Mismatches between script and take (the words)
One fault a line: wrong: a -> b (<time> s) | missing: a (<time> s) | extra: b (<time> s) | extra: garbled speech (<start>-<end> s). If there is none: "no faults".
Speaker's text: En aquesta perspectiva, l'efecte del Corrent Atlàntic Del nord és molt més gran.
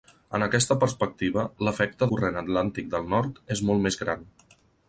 missing: del (2.1 s)